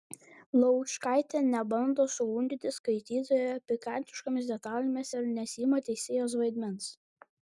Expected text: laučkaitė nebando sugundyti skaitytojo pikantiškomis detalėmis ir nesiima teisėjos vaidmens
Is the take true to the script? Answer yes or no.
yes